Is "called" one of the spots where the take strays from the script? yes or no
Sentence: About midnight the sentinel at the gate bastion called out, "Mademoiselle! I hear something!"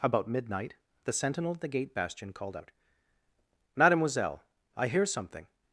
no